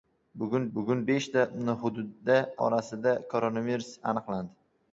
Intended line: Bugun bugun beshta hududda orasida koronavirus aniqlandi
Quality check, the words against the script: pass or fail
pass